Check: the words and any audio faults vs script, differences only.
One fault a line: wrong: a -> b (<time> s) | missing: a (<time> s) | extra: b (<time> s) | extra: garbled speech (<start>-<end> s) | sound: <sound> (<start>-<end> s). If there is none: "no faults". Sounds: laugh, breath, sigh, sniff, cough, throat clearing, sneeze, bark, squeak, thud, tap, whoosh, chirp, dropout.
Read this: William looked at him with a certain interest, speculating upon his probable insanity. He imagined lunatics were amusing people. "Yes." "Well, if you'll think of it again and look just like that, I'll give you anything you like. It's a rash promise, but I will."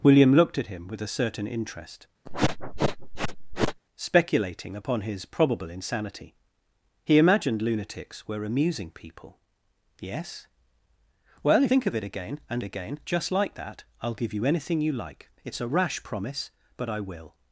sound: sniff (2.2-3.8 s)
missing: you'll (11.7 s)
wrong: look -> again (12.6 s)